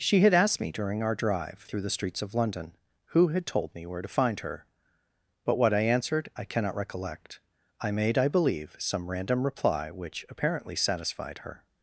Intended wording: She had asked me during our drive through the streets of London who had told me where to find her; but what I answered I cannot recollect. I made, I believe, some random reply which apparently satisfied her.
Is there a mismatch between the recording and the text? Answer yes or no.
no